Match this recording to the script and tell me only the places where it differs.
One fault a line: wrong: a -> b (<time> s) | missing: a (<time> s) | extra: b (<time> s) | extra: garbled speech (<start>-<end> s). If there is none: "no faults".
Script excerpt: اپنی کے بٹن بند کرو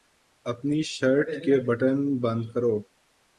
extra: شرٹ (0.8 s)